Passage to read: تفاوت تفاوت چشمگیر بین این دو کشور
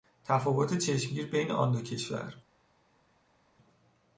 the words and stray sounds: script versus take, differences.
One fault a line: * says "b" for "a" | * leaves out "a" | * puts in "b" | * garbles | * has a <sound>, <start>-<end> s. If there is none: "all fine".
* leaves out "تفاوت"
* says "آن" for "این"